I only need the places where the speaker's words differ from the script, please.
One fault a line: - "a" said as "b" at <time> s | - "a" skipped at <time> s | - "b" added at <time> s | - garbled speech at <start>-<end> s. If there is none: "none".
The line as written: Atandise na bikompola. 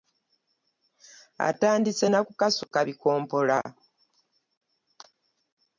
- "kukasuka" added at 2.2 s